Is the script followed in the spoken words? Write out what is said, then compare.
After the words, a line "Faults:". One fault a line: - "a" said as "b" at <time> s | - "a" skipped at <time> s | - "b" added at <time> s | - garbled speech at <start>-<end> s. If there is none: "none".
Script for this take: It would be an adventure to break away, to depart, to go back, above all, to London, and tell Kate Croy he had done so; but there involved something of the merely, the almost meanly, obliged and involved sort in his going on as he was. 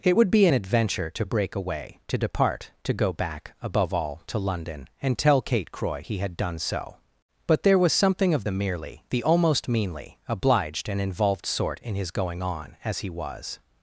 It would be an adventure to break away, to depart, to go back, above all, to London, and tell Kate Croy he had done so; but there was something of the merely, the almost meanly, obliged and involved sort in his going on as he was.
Faults:
- "involved" said as "was" at 7.8 s